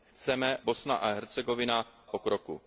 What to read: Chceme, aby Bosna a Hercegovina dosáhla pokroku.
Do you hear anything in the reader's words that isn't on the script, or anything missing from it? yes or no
yes